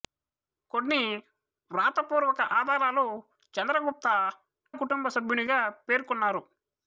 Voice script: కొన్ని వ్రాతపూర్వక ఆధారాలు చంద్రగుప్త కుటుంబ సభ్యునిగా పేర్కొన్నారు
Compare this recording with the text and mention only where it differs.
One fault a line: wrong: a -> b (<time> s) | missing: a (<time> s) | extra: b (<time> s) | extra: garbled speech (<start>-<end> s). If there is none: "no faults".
no faults